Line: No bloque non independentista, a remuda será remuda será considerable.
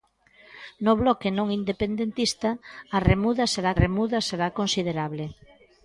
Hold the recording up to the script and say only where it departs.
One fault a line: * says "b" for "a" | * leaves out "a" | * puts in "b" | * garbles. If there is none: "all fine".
all fine